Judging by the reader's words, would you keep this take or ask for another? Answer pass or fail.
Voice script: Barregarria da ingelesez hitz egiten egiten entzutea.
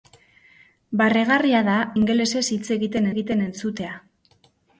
pass